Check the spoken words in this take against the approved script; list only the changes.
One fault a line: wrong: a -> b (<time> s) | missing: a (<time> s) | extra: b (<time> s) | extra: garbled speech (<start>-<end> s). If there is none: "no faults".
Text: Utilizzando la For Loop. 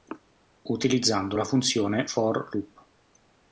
extra: funzione (1.4 s)